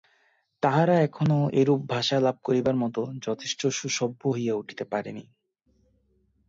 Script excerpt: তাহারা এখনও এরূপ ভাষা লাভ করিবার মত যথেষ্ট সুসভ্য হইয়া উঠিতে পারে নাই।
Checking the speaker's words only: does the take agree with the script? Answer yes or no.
yes